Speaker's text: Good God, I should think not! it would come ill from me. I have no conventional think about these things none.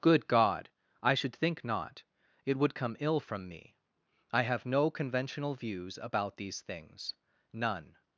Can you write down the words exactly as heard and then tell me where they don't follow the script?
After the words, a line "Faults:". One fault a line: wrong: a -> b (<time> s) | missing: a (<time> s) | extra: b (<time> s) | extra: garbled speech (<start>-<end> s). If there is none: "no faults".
Good God, I should think not! it would come ill from me. I have no conventional views about these things none.
Faults:
wrong: think -> views (5.5 s)